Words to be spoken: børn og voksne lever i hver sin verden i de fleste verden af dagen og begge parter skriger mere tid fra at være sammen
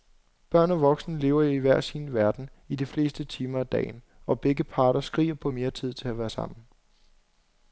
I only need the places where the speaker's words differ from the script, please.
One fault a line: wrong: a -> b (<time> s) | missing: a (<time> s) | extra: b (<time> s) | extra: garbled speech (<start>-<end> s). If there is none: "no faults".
wrong: verden -> timer (3.2 s)
extra: på (5.3 s)
wrong: fra -> til (5.9 s)